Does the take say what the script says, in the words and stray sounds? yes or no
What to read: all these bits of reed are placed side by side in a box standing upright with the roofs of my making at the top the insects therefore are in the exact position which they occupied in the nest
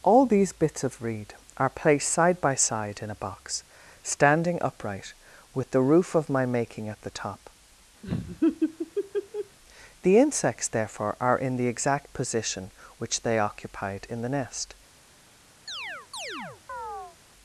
no